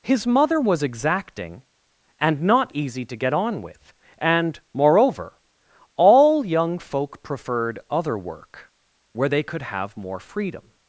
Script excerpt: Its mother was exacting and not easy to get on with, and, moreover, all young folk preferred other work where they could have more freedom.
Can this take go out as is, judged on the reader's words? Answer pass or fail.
fail